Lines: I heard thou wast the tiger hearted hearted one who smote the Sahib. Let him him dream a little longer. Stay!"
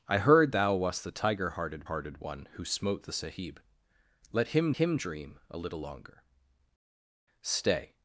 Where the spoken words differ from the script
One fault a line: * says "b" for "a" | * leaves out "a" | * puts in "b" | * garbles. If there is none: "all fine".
all fine